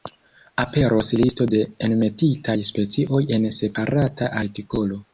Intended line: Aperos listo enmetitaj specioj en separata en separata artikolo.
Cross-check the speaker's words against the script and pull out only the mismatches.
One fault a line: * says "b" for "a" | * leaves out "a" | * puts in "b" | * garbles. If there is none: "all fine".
* puts in "de"
* leaves out "en separata"